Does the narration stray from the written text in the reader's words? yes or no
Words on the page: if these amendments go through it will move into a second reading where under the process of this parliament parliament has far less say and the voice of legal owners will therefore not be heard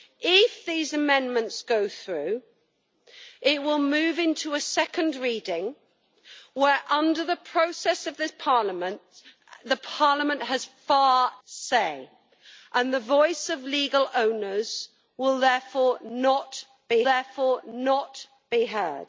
yes